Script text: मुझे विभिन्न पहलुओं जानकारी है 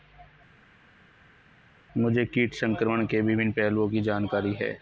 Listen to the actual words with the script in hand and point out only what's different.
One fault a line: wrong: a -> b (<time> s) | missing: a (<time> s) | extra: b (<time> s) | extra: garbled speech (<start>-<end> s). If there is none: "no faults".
extra: कीट संक्रमण के (2.3 s)
extra: की (3.9 s)